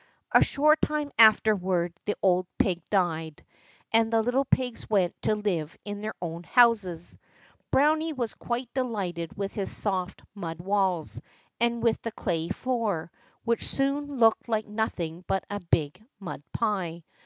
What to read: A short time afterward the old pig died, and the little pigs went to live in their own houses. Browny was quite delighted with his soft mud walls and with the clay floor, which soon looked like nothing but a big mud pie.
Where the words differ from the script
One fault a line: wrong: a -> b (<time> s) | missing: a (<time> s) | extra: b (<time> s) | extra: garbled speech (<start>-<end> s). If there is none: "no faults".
no faults